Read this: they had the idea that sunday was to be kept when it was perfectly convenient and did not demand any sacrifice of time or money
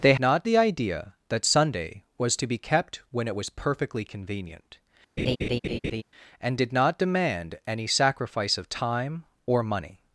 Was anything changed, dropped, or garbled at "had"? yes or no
yes